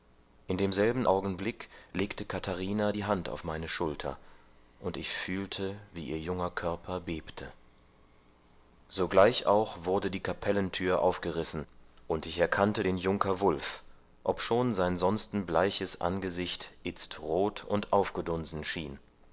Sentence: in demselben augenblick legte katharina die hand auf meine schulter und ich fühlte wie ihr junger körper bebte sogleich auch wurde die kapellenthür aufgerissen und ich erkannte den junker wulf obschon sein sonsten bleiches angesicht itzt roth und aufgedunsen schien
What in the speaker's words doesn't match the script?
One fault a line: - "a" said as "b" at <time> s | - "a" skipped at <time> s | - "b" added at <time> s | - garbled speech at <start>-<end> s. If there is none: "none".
none